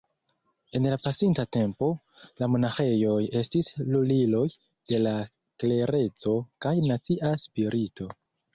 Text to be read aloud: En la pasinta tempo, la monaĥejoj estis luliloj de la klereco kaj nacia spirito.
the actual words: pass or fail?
pass